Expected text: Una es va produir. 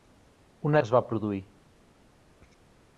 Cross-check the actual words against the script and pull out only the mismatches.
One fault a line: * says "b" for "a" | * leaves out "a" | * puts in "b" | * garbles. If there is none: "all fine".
all fine